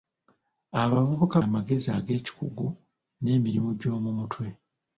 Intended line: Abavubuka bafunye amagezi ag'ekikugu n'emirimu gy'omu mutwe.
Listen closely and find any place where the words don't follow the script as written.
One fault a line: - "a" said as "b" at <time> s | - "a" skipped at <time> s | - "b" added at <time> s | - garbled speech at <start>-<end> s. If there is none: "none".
- "bafunye" skipped at 1.4 s